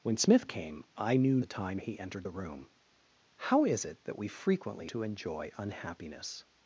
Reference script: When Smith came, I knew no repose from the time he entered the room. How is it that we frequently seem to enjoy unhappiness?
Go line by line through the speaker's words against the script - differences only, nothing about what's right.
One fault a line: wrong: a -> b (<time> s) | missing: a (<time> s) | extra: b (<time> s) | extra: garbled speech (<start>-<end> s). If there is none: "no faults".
missing: no repose from (1.4 s)
missing: seem (4.9 s)